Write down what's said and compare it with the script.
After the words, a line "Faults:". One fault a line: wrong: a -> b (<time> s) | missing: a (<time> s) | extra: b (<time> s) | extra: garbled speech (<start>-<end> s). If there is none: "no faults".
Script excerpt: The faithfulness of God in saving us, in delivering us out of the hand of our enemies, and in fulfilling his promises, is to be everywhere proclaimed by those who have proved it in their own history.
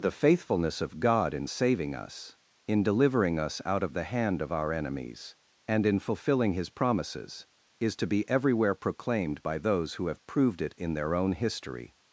The faithfulness of God in saving us, in delivering us out of the hand of our enemies, and in fulfilling his promises, is to be everywhere proclaimed by those who have proved it in their own history.
Faults:
no faults